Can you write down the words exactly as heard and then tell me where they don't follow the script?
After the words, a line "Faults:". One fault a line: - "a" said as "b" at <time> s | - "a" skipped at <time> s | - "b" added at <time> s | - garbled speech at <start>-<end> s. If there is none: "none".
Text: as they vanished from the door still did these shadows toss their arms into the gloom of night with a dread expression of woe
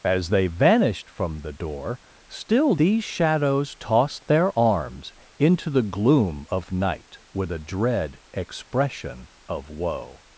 as they vanished from the door still these shadows toss their arms into the gloom of night with a dread expression of woe
Faults:
- "did" skipped at 2.8 s